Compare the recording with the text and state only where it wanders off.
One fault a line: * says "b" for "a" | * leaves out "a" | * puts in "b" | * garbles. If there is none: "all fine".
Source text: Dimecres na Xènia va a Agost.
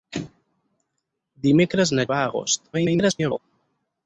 * leaves out "Xènia"
* garbles